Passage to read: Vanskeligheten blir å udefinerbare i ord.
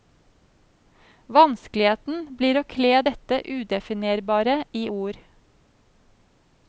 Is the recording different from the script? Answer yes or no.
yes